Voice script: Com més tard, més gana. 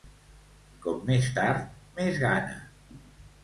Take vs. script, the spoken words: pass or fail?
pass